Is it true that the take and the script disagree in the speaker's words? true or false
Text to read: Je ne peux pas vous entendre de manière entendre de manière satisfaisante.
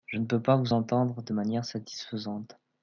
true